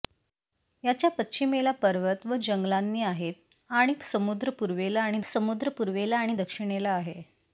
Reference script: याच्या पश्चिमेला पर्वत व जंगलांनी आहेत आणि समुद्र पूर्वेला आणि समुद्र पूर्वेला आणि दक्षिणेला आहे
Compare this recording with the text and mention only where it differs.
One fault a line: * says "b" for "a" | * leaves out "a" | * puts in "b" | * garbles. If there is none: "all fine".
all fine